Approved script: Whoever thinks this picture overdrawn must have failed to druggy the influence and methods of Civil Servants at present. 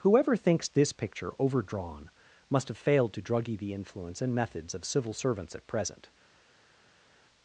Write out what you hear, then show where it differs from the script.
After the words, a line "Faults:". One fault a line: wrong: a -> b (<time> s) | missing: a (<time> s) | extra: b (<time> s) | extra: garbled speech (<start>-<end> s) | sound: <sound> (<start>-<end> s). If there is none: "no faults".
Whoever thinks this picture overdrawn must have failed to druggy the influence and methods of Civil Servants at present.
Faults:
no faults